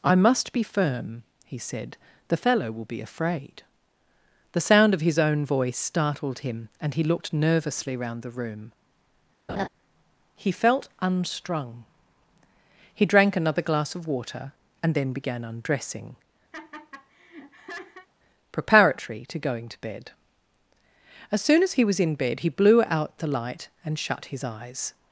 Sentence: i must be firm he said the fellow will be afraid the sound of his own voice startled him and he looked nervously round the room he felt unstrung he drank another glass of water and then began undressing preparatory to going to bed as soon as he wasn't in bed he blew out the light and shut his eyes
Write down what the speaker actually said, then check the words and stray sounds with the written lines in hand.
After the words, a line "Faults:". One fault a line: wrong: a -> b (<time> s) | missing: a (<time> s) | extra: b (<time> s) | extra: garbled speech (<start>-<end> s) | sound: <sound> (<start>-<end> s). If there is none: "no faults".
i must be firm he said the fellow will be afraid the sound of his own voice startled him and he looked nervously round the room he felt unstrung he drank another glass of water and then began undressing preparatory to going to bed as soon as he was in bed he blew out the light and shut his eyes
Faults:
sound: laugh (9.5-9.7 s)
sound: laugh (16.5-18.1 s)
wrong: wasn't -> was (21.8 s)